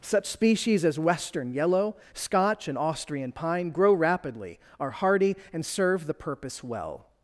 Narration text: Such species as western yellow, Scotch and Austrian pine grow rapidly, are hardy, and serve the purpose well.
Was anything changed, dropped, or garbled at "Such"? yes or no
no